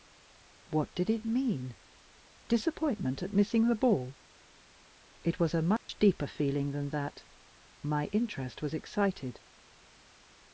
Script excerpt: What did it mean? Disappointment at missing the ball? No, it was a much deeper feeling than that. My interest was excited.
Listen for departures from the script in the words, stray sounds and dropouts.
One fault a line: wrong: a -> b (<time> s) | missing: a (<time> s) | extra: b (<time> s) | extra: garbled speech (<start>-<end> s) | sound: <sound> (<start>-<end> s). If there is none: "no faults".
missing: No (4.1 s)
sound: dropout (5.8-5.9 s)